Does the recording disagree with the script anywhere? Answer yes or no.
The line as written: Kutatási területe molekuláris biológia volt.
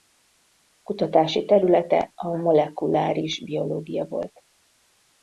yes